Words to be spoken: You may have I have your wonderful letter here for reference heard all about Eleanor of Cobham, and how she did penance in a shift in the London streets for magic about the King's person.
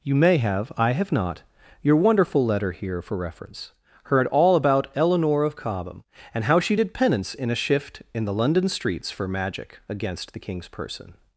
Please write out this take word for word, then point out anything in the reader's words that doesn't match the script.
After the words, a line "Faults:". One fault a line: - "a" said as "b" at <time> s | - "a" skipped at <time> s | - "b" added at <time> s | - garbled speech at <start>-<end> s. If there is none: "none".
You may have I have not your wonderful letter here for reference heard all about Eleanor of Cobham, and how she did penance in a shift in the London streets for magic against the King's person.
Faults:
- "not" added at 1.1 s
- "about" said as "against" at 9.9 s